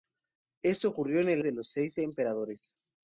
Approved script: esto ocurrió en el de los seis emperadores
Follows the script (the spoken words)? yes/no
yes